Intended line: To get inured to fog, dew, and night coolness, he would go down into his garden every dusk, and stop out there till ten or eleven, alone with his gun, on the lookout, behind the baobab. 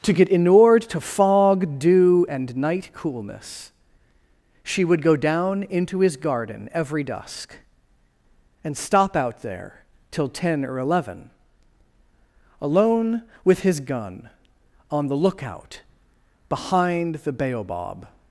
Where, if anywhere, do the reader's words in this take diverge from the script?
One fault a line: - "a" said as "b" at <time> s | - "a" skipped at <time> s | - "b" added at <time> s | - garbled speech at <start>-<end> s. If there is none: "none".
- "he" said as "she" at 4.6 s